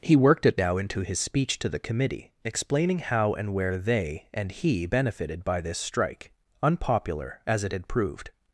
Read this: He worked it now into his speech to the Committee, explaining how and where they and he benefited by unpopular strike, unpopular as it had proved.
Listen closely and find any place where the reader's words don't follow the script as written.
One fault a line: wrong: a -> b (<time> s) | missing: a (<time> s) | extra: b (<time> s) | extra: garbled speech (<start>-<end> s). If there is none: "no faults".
wrong: unpopular -> this (5.6 s)